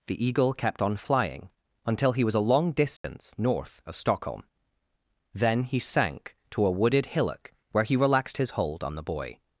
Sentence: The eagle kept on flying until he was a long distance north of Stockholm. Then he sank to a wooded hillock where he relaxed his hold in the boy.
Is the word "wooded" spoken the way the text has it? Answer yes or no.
yes